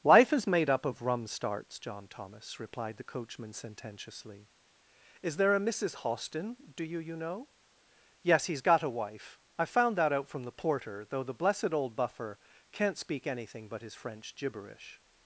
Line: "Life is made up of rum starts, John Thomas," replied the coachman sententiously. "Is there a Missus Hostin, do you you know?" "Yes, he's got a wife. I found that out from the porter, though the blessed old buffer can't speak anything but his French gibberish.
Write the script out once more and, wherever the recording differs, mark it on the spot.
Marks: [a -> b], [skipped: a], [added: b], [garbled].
"Life is made up of rum starts, John Thomas," replied the coachman sententiously. "Is there a Missus Hostin, do you you know?" "Yes, he's got a wife. I found that out from the porter, though the blessed old buffer can't speak anything but his French gibberish.